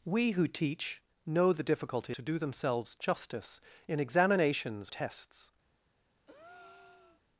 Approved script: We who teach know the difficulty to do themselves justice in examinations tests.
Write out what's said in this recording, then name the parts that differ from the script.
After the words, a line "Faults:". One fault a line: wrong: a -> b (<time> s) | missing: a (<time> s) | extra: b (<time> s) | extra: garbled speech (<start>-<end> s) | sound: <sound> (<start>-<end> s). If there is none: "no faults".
We who teach know the difficulty to do themselves justice in examinations tests.
Faults:
sound: breath (6.3-7.2 s)